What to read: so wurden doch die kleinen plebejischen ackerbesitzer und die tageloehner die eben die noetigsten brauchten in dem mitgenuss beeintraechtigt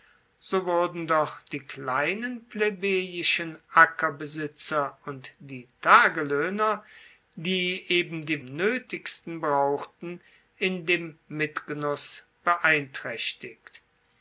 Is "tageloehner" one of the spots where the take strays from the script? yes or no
no